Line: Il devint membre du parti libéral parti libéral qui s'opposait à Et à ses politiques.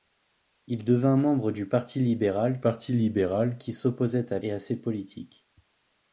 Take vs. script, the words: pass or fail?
pass